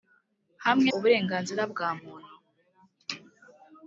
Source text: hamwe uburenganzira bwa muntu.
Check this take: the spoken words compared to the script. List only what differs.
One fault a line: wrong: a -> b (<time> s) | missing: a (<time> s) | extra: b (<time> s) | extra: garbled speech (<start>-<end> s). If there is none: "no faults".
no faults